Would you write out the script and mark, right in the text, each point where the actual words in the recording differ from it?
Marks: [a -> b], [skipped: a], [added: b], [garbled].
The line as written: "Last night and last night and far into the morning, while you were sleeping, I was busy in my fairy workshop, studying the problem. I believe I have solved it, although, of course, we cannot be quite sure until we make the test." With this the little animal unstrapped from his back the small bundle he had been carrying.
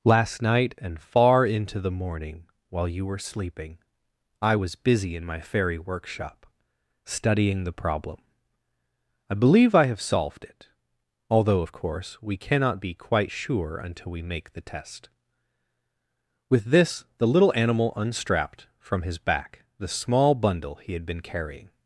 "Last night and [skipped: last night and] far into the morning, while you were sleeping, I was busy in my fairy workshop, studying the problem. I believe I have solved it, although, of course, we cannot be quite sure until we make the test." With this the little animal unstrapped from his back the small bundle he had been carrying.